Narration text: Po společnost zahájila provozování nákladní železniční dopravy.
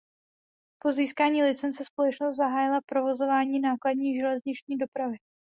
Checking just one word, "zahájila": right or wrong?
right